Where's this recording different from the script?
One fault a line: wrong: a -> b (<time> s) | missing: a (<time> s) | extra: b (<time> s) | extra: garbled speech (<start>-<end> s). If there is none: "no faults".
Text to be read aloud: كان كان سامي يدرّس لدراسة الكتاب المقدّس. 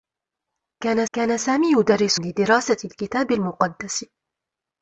no faults